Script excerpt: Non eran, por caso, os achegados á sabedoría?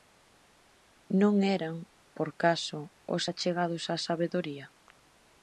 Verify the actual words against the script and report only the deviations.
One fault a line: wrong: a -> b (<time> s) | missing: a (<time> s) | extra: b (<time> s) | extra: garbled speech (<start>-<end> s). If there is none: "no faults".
no faults